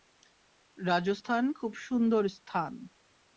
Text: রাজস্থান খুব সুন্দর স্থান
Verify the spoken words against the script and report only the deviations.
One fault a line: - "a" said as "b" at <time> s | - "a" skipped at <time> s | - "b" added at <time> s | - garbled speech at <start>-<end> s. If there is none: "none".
none